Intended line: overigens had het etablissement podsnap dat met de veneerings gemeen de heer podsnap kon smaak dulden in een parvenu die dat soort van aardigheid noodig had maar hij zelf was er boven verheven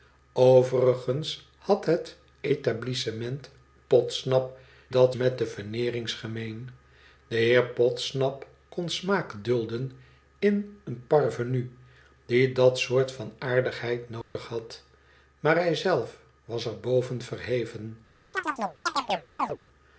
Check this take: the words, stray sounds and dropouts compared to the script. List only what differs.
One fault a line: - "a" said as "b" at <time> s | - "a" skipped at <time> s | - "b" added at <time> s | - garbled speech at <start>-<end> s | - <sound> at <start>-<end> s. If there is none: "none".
- dropout at 14.2-14.4 s
- chirp at 18.3-19.6 s